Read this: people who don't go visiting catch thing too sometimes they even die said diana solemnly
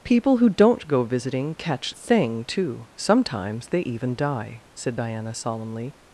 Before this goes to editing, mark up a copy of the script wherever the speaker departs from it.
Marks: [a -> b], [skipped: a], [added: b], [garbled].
people who don't go visiting catch thing too sometimes they even die said diana solemnly